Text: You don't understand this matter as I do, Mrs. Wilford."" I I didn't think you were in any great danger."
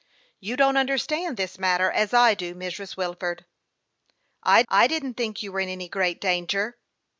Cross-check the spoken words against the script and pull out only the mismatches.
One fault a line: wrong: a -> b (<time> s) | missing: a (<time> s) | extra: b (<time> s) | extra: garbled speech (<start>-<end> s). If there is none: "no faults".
no faults